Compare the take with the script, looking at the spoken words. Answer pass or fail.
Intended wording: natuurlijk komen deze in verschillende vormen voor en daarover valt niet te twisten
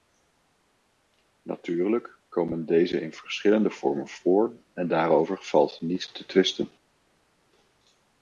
pass